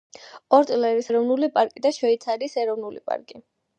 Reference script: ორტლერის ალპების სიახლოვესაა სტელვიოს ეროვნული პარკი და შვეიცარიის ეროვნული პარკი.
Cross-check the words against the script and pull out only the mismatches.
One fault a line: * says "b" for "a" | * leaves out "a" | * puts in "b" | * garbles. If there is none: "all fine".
* leaves out "ალპების სიახლოვესაა სტელვიოს"